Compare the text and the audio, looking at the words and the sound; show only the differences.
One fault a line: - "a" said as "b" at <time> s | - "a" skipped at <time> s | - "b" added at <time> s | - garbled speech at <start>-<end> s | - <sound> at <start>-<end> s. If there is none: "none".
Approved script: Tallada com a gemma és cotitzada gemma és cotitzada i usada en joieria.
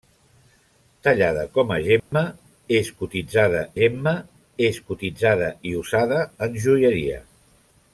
- dropout at 2.0-2.1 s